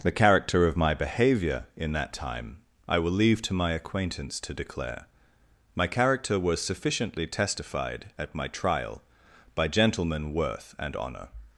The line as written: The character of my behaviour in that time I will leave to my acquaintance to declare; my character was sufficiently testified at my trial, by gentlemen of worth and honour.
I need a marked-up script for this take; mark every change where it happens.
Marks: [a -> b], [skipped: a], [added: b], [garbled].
The character of my behaviour in that time I will leave to my acquaintance to declare; my character was sufficiently testified at my trial, by gentlemen [skipped: of] worth and honour.